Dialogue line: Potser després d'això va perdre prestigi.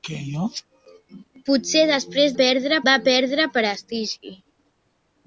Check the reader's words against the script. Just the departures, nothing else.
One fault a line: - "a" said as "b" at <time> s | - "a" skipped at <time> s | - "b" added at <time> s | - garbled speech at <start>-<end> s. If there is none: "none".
- "d'això" said as "perdre" at 2.4 s